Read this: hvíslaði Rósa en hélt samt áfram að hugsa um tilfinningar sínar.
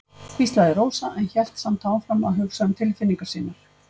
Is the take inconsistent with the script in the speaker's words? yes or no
no